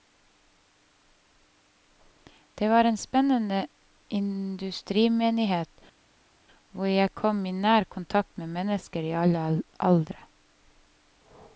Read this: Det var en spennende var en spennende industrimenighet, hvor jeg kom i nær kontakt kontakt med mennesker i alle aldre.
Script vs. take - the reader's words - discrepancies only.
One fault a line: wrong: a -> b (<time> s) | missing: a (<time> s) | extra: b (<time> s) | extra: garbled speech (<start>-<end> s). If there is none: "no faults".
missing: var en spennende (3.7 s)
missing: kontakt (8.4 s)